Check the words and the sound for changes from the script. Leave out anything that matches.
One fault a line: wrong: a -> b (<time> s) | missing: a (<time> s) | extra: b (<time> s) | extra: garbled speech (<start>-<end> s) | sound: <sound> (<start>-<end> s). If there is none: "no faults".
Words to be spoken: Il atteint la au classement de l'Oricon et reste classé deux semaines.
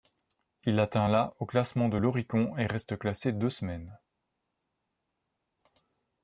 no faults